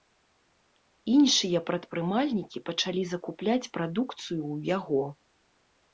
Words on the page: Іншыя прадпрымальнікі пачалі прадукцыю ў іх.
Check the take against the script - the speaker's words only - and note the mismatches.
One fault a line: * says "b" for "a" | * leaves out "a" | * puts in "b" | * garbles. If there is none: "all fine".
* puts in "закупляць"
* says "яго" for "іх"